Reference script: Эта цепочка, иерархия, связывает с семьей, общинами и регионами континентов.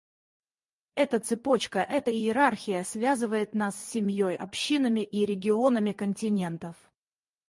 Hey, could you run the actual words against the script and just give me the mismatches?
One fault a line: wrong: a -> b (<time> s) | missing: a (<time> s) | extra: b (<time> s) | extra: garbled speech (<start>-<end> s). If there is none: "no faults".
extra: эта (1.8 s)
extra: нас (3.5 s)